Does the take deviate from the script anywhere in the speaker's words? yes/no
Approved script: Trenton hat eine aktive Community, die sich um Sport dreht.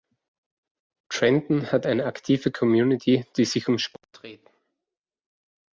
no